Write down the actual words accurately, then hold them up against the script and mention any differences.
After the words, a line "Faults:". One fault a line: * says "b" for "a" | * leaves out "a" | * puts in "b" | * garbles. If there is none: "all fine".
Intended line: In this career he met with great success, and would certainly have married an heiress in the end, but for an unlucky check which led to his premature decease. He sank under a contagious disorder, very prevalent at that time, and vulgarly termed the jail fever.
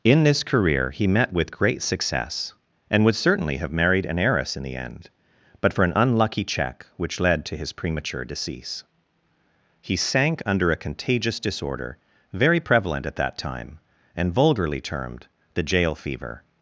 In this career he met with great success, and would certainly have married an heiress in the end, but for an unlucky check which led to his premature decease. He sank under a contagious disorder, very prevalent at that time, and vulgarly termed the jail fever.
Faults:
all fine